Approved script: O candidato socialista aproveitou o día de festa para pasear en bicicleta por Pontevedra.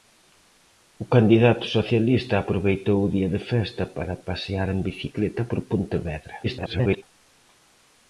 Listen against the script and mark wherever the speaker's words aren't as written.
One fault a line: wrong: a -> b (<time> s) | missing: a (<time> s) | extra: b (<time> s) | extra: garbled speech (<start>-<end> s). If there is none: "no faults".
extra: garbled speech (6.4-7.0 s)